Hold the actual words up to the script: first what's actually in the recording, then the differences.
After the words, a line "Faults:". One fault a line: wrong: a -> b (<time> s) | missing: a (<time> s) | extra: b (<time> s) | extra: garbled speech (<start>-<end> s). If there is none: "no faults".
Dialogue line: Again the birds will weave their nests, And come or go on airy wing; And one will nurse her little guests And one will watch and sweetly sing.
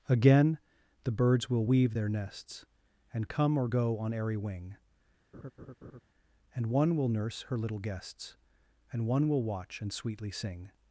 Again the birds will weave their nests, And come or go on airy wing; And one will nurse her little guests And one will watch and sweetly sing.
Faults:
no faults